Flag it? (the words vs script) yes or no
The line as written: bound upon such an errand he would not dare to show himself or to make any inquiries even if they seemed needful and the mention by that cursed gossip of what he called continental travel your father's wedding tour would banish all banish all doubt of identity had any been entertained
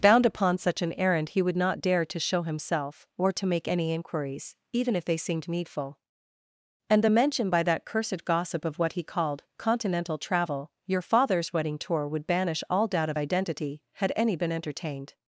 yes